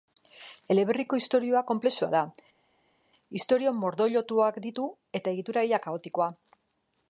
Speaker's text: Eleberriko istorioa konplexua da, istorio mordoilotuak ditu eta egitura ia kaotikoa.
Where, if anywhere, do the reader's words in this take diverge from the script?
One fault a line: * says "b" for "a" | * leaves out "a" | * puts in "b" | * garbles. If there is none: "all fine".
all fine